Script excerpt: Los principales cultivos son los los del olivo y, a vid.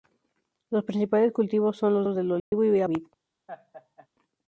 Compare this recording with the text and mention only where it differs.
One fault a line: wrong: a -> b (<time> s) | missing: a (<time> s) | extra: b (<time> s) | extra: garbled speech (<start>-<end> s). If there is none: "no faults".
no faults